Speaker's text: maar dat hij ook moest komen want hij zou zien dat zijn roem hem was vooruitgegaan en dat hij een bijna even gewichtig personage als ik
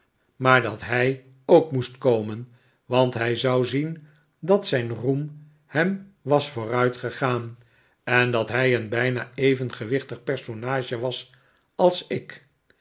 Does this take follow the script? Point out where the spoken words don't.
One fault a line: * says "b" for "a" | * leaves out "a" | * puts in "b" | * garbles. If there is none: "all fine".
* puts in "was"